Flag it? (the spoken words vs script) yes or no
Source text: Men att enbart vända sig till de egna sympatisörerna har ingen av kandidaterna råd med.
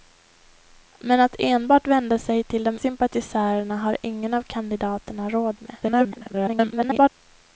yes